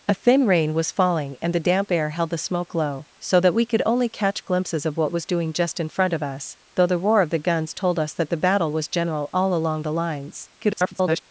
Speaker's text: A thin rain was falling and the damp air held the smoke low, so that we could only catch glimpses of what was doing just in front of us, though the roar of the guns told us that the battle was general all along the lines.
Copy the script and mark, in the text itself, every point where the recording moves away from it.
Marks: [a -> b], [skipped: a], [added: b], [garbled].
A thin rain was falling and the damp air held the smoke low, so that we could only catch glimpses of what was doing just in front of us, though the roar of the guns told us that the battle was general all along the lines. [garbled]